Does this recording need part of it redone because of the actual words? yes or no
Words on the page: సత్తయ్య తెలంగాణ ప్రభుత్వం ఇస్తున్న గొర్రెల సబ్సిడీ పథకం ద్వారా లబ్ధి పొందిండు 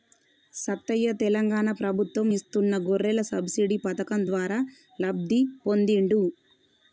no